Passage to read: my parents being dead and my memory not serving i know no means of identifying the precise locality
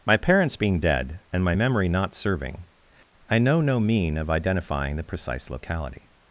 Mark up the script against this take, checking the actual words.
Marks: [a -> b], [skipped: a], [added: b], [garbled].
my parents being dead and my memory not serving i know no [means -> mean] of identifying the precise locality